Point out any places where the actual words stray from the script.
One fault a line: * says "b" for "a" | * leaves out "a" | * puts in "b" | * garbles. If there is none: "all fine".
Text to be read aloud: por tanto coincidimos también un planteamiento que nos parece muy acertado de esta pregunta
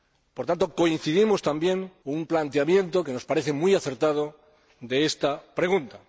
all fine